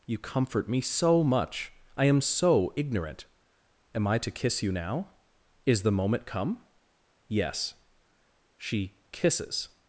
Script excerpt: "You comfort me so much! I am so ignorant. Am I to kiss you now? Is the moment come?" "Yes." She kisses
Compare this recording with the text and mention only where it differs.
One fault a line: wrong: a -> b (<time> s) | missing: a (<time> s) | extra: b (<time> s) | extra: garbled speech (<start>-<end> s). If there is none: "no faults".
no faults